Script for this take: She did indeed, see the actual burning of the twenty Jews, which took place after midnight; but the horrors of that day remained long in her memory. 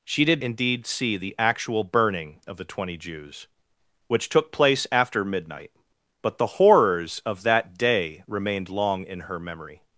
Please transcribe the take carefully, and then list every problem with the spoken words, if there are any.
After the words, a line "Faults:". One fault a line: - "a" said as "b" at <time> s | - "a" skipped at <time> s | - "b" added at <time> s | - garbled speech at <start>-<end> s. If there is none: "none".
She did indeed, see the actual burning of the twenty Jews, which took place after midnight; but the horrors of that day remained long in her memory.
Faults:
none